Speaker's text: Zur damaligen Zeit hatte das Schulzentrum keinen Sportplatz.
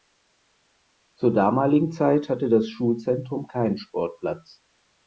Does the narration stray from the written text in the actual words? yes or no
no